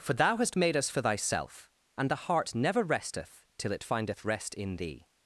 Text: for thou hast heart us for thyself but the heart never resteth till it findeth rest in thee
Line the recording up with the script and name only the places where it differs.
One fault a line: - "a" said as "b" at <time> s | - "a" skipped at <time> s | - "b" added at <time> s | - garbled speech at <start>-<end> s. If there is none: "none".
- "heart" said as "made" at 0.6 s
- "but" said as "and" at 1.9 s